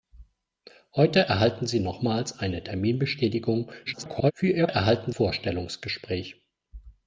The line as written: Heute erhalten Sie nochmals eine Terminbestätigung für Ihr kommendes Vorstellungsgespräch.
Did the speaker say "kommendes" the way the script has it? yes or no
no